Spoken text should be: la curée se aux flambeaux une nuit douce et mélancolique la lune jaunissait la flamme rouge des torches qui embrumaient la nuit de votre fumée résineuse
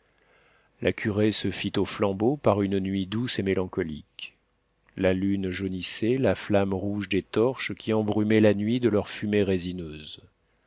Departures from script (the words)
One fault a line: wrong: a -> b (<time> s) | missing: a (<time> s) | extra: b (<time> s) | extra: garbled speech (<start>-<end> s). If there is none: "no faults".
extra: fit (1.5 s)
extra: par (2.4 s)
wrong: votre -> leur (8.9 s)